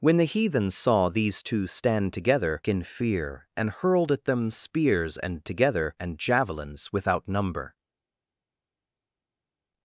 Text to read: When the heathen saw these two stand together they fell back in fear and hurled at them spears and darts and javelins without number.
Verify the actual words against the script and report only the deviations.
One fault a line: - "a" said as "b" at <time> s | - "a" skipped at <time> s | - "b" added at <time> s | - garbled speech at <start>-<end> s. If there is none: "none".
- "they fell back" skipped at 2.6 s
- "darts" said as "together" at 5.4 s